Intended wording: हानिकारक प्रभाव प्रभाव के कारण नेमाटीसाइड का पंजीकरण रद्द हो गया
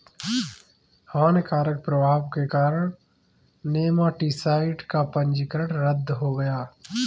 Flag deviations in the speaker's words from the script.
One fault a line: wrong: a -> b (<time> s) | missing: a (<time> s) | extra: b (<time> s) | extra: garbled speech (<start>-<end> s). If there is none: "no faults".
missing: प्रभाव (2.2 s)